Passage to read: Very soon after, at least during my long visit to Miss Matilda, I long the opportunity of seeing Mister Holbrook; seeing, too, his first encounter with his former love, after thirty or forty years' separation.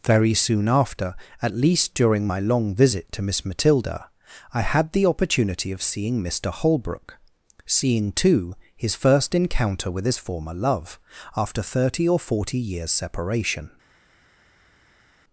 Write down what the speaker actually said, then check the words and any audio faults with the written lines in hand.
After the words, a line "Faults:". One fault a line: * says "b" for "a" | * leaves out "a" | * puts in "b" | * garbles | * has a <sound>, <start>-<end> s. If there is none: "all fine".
Very soon after, at least during my long visit to Miss Matilda, I had the opportunity of seeing Mister Holbrook; seeing, too, his first encounter with his former love, after thirty or forty years' separation.
Faults:
* says "had" for "long"